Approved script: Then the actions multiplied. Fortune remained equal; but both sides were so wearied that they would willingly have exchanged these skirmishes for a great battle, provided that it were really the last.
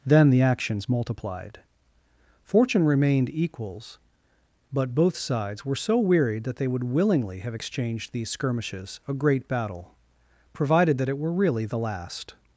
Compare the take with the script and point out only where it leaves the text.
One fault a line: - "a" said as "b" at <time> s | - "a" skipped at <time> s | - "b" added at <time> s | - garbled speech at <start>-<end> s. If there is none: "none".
- "equal" said as "equals" at 3.3 s
- "for" skipped at 9.0 s